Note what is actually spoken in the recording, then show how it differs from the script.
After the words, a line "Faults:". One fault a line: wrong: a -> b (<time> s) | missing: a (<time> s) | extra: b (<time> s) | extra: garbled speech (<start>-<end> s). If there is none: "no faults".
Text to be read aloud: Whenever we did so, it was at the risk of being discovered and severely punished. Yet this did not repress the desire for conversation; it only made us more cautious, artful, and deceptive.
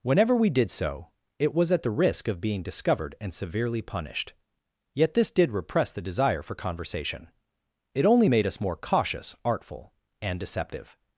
Whenever we did so, it was at the risk of being discovered and severely punished. Yet this did repress the desire for conversation; it only made us more cautious, artful, and deceptive.
Faults:
missing: not (5.5 s)